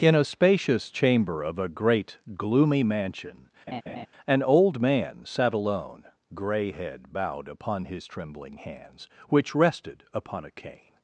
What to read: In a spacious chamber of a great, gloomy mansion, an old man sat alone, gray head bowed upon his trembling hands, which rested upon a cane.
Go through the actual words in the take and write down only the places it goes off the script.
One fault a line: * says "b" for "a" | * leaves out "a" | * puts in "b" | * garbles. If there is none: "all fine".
all fine